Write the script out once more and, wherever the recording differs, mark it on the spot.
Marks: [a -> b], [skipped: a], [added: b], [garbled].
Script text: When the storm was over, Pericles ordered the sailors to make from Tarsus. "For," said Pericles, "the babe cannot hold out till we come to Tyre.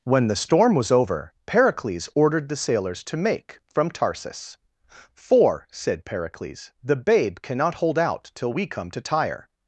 When the storm was over, Pericles ordered the sailors to make from Tarsus. "For," said Pericles, "the babe cannot hold out till we come to Tyre.